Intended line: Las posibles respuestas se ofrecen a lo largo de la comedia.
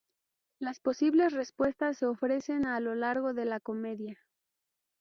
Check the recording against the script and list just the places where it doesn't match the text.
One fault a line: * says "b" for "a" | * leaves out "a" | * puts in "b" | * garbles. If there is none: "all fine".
all fine